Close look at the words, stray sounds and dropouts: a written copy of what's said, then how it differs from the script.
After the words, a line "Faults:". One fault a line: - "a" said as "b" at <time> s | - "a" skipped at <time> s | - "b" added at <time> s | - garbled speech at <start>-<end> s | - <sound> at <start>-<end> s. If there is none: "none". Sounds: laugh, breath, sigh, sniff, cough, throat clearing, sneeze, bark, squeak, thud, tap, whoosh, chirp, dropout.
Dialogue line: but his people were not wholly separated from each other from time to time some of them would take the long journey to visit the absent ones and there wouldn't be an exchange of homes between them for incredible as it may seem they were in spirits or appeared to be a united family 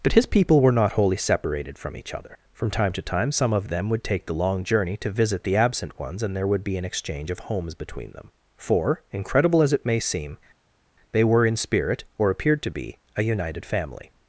but his people were not wholly separated from each other from time to time some of them would take the long journey to visit the absent ones and there would be an exchange of homes between them for incredible as it may seem they were in spirit or appeared to be a united family
Faults:
- "wouldn't" said as "would" at 6.5 s
- "spirits" said as "spirit" at 11.6 s